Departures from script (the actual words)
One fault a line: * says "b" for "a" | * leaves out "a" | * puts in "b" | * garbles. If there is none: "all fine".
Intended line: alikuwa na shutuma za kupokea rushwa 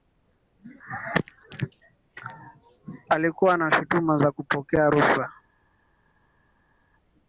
all fine